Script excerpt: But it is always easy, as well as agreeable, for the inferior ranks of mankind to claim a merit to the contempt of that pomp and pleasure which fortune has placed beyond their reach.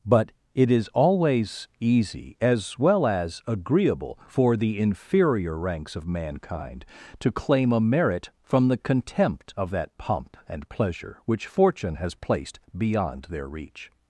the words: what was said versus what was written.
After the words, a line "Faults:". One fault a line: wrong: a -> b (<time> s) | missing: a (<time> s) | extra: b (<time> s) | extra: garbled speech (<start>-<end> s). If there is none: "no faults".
But it is always easy, as well as agreeable, for the inferior ranks of mankind to claim a merit from the contempt of that pomp and pleasure which fortune has placed beyond their reach.
Faults:
wrong: to -> from (8.4 s)